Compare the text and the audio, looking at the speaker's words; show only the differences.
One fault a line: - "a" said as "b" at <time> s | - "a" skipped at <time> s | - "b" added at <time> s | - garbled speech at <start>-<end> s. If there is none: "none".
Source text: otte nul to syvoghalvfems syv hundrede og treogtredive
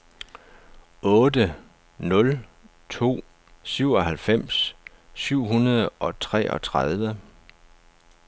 none